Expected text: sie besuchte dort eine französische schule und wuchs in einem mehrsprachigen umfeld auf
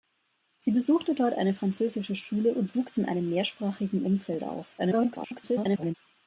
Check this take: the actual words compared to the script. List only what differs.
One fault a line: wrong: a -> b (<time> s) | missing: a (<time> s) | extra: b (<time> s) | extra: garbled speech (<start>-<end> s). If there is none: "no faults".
extra: garbled speech (4.8-5.9 s)